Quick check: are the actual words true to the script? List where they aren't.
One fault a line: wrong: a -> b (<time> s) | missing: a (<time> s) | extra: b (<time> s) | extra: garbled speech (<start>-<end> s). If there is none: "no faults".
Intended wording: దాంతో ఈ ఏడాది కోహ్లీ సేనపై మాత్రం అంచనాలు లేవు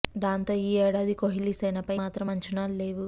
no faults